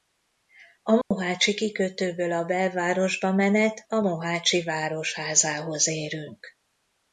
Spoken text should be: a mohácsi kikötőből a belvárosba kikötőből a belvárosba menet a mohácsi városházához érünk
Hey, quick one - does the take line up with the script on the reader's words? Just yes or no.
no